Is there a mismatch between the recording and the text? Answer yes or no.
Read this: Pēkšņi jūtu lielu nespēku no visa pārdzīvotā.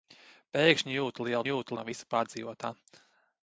yes